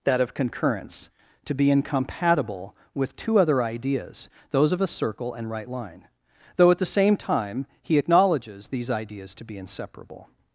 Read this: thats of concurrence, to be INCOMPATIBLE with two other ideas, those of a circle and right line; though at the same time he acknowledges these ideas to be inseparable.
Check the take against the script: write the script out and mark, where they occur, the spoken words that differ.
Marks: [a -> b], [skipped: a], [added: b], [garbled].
[thats -> that] of concurrence, to be INCOMPATIBLE with two other ideas, those of a circle and right line; though at the same time he acknowledges these ideas to be inseparable.